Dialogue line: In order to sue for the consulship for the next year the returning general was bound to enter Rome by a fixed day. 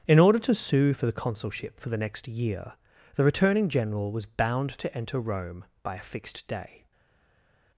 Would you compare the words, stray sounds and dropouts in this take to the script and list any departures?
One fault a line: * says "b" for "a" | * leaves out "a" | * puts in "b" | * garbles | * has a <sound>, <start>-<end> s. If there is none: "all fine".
all fine